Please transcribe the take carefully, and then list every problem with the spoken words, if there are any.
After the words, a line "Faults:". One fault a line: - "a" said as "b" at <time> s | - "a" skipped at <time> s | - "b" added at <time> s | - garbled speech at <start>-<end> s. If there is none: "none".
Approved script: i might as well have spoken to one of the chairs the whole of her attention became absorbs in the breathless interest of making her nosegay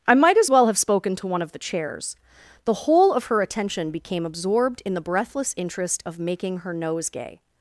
i might as well have spoken to one of the chairs the whole of her attention became absorbed in the breathless interest of making her nosegay
Faults:
- "absorbs" said as "absorbed" at 4.2 s